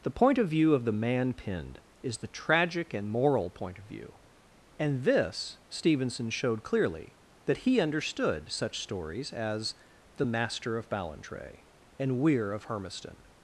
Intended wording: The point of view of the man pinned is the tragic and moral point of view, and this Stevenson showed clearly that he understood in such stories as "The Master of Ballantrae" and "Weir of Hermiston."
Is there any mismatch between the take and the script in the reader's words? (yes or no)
yes